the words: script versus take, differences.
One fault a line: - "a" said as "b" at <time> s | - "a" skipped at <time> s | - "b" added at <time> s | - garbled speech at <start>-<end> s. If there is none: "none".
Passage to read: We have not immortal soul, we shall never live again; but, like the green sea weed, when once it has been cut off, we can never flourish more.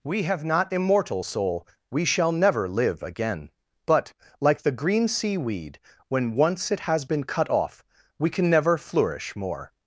none